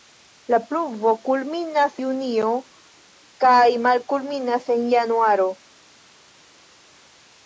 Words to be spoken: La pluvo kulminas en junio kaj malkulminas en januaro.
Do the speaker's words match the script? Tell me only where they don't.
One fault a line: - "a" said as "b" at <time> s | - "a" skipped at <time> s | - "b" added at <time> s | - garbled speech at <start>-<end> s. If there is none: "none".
- "en" skipped at 2.0 s